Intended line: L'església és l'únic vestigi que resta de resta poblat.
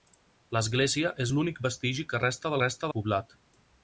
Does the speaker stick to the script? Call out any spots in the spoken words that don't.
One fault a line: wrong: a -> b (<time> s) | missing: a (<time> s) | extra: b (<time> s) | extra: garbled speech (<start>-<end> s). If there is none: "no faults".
no faults